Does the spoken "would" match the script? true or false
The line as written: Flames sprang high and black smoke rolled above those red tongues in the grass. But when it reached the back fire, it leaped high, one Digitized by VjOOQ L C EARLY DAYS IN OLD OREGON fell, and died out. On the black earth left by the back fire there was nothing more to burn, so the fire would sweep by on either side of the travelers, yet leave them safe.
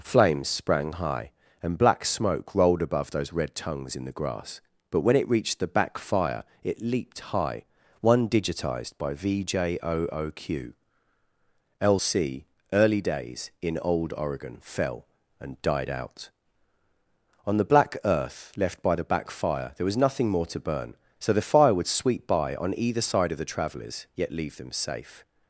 true